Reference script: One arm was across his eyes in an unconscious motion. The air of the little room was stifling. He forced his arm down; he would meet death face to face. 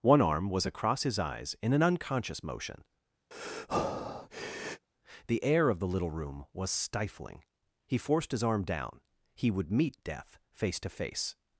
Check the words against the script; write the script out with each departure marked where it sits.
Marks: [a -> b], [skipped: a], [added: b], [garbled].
One arm was across his eyes in an unconscious motion. The air of the little room was stifling. He forced his arm down; he would meet death face to face.